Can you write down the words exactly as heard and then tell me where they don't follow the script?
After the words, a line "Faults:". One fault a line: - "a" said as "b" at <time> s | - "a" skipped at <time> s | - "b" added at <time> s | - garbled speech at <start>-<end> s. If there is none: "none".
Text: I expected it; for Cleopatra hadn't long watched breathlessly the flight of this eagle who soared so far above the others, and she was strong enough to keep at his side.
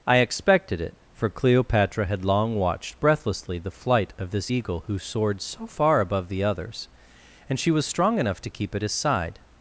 I expected it; for Cleopatra had long watched breathlessly the flight of this eagle who soared so far above the others, and she was strong enough to keep at his side.
Faults:
- "hadn't" said as "had" at 2.1 s